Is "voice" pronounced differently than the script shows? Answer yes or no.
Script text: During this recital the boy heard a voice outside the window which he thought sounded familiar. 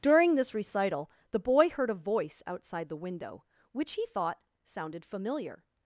no